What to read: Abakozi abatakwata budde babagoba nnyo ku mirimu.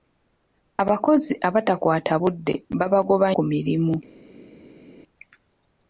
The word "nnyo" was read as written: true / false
false